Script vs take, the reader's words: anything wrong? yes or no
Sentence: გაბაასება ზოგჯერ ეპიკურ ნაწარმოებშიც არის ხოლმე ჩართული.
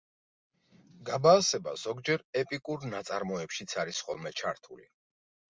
no